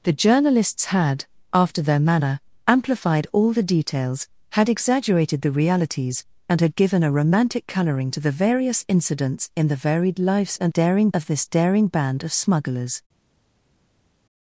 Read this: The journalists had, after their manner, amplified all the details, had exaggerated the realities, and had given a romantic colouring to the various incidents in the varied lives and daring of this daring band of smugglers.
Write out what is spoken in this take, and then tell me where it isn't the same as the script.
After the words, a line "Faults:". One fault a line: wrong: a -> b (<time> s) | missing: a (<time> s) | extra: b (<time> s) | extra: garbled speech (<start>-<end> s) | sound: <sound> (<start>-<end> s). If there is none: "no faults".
The journalists had, after their manner, amplified all the details, had exaggerated the realities, and had given a romantic colouring to the various incidents in the varied lives and daring of this daring band of smugglers.
Faults:
no faults